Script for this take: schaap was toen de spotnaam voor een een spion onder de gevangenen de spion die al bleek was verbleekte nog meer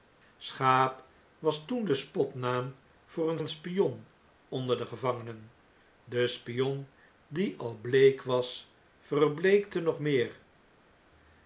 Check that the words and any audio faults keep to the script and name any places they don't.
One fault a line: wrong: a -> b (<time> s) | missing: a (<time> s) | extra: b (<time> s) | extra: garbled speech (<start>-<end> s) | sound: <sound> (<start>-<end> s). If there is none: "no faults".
no faults